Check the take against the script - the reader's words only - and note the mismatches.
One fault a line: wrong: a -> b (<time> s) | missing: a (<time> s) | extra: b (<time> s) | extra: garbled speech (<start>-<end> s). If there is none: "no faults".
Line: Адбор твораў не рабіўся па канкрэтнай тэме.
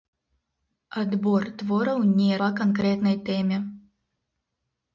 missing: рабіўся (2.3 s)